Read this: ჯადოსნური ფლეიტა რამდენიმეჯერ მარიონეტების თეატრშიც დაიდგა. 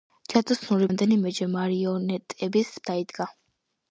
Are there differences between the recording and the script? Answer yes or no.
yes